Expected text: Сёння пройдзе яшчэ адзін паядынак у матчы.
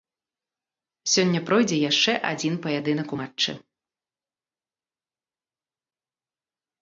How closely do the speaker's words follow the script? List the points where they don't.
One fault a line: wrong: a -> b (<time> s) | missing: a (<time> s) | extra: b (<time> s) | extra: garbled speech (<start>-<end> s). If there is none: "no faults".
no faults